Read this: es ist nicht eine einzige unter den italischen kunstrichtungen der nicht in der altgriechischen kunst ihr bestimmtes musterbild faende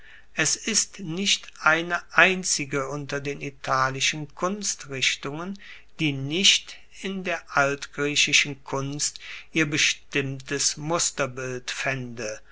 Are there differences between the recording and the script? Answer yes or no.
yes